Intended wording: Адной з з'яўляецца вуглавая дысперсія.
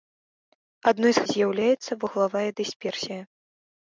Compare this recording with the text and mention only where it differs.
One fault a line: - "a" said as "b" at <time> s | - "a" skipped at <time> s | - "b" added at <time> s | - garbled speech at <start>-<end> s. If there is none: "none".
none